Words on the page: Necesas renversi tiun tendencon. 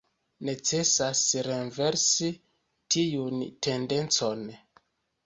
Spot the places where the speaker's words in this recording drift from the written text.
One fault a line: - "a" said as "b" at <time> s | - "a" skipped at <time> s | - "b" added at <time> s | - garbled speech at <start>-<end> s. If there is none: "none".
none